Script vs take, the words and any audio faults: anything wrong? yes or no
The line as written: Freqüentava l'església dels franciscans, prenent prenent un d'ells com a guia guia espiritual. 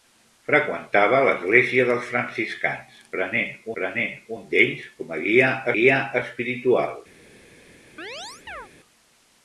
yes